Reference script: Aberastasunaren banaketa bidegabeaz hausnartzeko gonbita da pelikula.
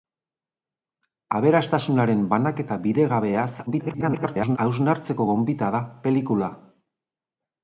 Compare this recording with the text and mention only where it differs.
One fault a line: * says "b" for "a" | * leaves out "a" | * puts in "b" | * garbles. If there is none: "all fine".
* garbles